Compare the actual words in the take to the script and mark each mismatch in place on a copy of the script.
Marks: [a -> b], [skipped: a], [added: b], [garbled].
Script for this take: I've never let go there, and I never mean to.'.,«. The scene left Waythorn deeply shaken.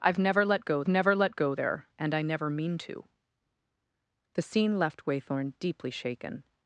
I've never let go [added: never let go] there, and I never mean to.'.,«. The scene left Waythorn deeply shaken.